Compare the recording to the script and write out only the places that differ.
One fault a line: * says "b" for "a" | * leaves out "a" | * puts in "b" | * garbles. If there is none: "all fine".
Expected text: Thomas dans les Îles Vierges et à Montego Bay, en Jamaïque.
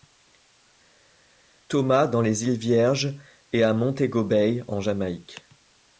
all fine